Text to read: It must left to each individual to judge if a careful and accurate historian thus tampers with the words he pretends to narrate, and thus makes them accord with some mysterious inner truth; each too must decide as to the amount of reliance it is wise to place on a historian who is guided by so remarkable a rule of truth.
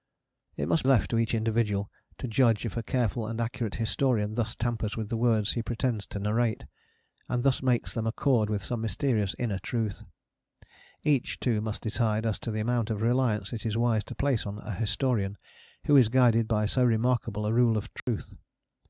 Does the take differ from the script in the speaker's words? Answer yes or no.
no